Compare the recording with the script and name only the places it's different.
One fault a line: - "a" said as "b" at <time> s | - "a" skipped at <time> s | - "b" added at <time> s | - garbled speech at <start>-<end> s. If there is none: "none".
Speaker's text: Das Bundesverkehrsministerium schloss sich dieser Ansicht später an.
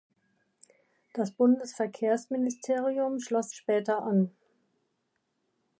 - "sich dieser Ansicht" skipped at 3.5 s